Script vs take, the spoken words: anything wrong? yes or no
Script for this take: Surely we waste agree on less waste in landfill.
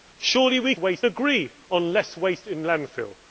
no